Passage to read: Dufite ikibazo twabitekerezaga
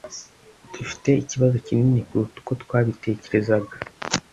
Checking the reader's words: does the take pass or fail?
fail